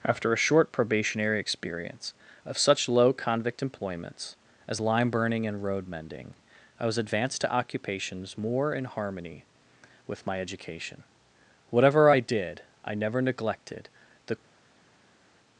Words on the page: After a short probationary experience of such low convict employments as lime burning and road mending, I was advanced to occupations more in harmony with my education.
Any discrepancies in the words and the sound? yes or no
yes